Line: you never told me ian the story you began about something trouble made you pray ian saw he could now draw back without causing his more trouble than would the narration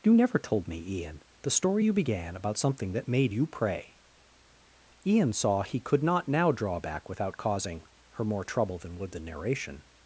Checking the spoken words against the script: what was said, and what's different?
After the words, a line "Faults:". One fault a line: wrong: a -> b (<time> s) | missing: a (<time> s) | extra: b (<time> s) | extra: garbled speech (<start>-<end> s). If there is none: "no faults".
you never told me ian the story you began about something that made you pray ian saw he could not now draw back without causing her more trouble than would the narration
Faults:
wrong: trouble -> that (2.9 s)
extra: not (6.0 s)
wrong: his -> her (8.1 s)